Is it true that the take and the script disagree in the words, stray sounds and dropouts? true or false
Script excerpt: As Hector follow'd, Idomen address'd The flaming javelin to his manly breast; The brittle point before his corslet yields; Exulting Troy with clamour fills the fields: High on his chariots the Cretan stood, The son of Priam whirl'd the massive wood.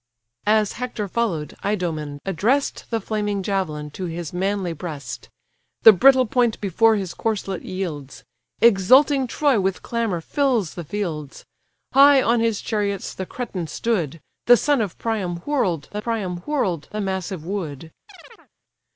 true